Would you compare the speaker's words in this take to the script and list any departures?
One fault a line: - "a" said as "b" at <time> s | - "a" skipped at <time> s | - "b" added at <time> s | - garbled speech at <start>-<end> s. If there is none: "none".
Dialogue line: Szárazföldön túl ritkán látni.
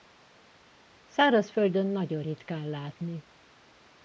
- "túl" said as "nagyon" at 1.9 s